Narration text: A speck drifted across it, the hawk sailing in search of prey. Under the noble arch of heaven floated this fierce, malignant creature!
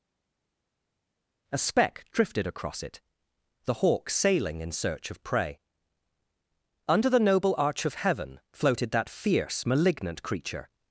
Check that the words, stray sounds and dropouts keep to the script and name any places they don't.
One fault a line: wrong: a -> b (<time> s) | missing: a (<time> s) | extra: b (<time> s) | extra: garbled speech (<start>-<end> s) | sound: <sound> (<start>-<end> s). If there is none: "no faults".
wrong: this -> that (8.9 s)